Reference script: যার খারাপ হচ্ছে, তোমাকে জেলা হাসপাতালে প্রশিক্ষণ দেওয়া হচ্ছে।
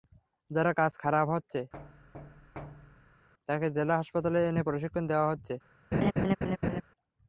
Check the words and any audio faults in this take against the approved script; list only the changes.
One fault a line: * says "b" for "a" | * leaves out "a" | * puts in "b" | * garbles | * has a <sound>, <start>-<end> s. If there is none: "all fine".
* puts in "কাজ"
* has a thud, 1.7-3.3 s
* says "তাকে" for "তোমাকে"
* puts in "এনে"
* has a laugh, 5.9-6.8 s